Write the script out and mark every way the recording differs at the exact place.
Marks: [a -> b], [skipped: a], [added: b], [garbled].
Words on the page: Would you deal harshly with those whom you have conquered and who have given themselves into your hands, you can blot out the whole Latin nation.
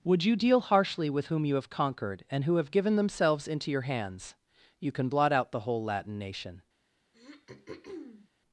Would you deal harshly with [skipped: those] whom you have conquered and who have given themselves into your hands, you can blot out the whole Latin nation.